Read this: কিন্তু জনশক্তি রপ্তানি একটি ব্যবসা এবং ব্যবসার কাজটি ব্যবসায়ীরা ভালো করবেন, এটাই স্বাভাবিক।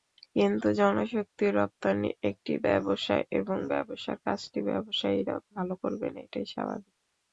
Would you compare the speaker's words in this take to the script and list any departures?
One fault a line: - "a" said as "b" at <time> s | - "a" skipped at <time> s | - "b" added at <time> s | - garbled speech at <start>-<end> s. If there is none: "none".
none